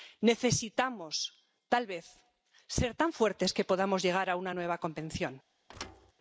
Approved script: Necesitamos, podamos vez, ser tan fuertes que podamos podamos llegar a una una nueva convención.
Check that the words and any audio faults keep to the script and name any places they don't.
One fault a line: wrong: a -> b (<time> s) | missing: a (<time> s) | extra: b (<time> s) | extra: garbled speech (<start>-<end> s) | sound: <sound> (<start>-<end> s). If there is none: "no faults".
wrong: podamos -> tal (1.7 s)
missing: podamos (4.0 s)
missing: una (4.5 s)
sound: thud (5.7-6.1 s)